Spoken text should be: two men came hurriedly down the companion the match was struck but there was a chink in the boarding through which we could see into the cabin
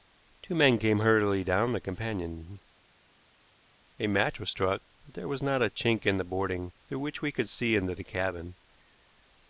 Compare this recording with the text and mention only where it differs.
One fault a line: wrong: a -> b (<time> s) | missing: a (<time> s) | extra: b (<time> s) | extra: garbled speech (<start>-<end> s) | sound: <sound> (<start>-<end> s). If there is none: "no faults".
wrong: the -> a (4.0 s)
extra: not (5.4 s)